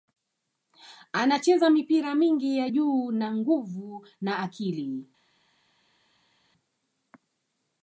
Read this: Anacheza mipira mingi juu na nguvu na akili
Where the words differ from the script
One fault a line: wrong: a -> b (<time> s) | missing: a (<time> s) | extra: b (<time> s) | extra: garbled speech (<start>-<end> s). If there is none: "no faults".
extra: ya (2.6 s)